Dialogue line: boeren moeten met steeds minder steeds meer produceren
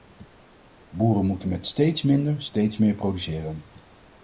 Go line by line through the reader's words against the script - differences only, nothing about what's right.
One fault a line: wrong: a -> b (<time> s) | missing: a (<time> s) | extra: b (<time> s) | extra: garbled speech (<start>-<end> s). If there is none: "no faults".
no faults